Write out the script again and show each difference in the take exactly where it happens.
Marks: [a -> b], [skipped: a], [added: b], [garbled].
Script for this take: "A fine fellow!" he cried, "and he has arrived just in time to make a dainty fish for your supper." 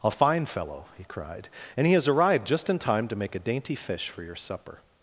"A fine fellow!" he cried, "and he has arrived just in time to make a dainty fish for your supper."